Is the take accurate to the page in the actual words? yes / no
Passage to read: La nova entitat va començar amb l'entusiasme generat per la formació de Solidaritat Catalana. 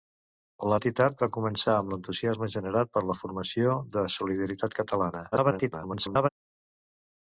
no